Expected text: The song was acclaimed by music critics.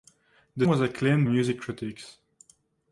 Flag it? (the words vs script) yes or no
yes